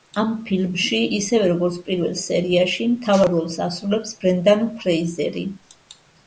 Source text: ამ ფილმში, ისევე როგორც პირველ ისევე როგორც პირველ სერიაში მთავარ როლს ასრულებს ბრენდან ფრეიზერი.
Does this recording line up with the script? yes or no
no